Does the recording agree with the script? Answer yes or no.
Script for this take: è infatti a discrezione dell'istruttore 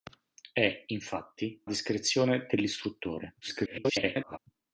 no